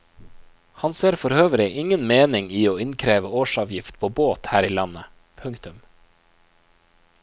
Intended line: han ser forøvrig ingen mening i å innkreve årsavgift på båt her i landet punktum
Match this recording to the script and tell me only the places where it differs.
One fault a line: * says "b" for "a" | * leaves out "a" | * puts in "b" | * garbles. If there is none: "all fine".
all fine